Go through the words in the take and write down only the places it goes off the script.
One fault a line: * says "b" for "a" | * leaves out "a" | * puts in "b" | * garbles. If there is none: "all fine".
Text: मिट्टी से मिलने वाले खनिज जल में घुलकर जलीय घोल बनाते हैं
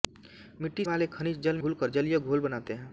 * leaves out "से मिलने"
* leaves out "में"